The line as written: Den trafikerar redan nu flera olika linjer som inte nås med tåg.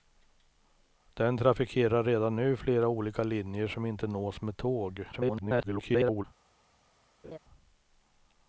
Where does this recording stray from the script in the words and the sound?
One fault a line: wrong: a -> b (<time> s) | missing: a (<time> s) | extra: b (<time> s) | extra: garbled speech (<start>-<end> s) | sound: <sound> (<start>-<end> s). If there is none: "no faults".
extra: garbled speech (5.1-6.2 s)
sound: laugh (7.2-7.4 s)